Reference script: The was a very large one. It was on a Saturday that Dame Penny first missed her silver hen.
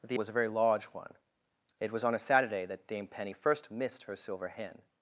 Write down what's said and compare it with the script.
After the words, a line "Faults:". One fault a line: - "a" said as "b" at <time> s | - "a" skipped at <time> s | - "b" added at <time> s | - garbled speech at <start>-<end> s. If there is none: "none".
The was a very large one. It was on a Saturday that Dame Penny first missed her silver hen.
Faults:
none